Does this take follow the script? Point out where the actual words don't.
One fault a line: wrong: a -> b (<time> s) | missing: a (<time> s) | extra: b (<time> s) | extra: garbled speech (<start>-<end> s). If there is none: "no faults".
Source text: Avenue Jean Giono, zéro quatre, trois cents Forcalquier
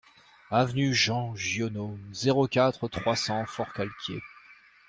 no faults